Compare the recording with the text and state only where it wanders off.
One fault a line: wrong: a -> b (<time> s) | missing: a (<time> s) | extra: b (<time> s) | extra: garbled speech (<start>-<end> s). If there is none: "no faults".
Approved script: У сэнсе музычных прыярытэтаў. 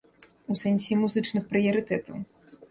no faults